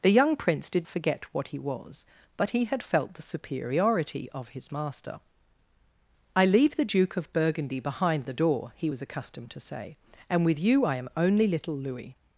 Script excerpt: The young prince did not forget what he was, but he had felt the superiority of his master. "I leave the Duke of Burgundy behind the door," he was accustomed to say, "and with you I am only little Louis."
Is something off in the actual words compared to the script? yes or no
yes